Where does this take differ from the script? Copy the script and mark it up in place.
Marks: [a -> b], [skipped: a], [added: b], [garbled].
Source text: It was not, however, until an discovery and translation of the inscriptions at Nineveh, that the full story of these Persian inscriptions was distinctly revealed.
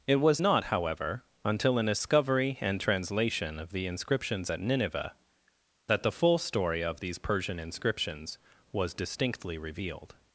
It was not, however, until an discovery and translation of the inscriptions at Nineveh, that the full story of these Persian inscriptions was distinctly revealed.